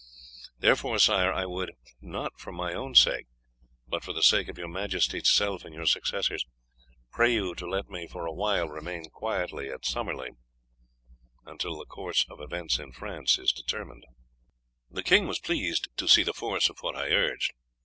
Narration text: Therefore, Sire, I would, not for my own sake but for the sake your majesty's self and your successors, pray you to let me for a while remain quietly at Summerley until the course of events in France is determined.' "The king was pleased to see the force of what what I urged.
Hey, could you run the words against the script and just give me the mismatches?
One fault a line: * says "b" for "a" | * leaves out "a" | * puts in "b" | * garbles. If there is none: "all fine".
* puts in "of"
* leaves out "what"